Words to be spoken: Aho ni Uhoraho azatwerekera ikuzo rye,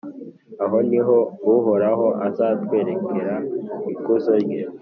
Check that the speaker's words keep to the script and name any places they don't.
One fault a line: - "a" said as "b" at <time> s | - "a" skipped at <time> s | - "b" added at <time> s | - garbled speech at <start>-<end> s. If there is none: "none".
- "ho" added at 1.1 s